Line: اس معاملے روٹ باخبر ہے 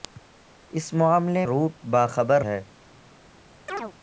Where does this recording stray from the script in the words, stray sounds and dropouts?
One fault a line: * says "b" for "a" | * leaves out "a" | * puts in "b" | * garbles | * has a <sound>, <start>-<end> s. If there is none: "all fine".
* has a chirp, 3.7-3.9 s